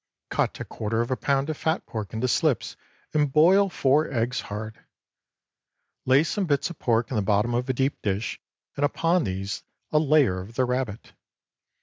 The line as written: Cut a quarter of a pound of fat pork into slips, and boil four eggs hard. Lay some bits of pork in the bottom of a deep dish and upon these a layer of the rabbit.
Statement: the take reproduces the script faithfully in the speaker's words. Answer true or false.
true